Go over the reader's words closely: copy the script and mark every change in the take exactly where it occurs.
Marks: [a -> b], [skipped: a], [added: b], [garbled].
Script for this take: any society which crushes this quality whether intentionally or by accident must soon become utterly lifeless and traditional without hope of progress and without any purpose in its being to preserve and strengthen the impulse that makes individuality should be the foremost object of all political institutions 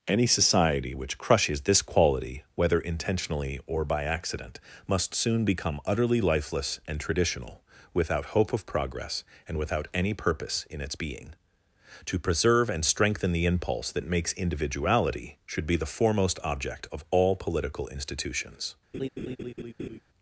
any society which crushes this quality whether intentionally or by accident must soon become utterly lifeless and traditional without hope of progress and without any purpose in its being to preserve and strengthen the impulse that makes individuality should be the foremost object of all political institutions